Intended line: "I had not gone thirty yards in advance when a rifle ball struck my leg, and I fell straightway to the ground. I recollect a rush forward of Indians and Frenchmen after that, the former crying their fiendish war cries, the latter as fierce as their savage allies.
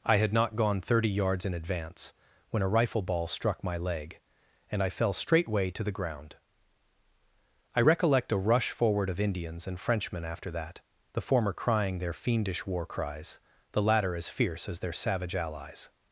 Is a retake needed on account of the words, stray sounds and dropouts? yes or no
no